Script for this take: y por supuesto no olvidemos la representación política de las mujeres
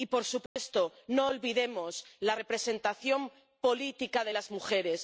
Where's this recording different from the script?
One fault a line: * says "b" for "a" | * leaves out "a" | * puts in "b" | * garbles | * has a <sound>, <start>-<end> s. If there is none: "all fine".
* has a dropout, 0.5-0.6 s